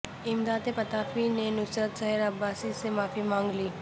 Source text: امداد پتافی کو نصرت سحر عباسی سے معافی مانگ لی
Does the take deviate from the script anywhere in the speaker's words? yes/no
yes